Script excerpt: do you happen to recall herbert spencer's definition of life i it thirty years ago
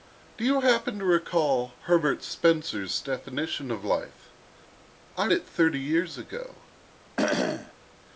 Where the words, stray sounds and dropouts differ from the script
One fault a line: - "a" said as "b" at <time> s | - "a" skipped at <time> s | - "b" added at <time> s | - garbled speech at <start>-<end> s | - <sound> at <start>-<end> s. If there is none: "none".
- cough at 7.2-7.7 s